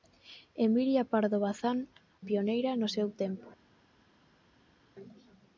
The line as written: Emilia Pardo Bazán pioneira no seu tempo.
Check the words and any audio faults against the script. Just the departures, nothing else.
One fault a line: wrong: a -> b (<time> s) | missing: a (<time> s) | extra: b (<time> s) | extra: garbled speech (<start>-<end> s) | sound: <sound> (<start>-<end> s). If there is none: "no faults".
no faults